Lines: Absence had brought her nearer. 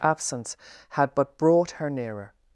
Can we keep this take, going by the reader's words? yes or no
no